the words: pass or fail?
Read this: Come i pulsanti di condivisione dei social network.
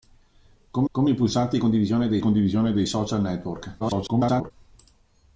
fail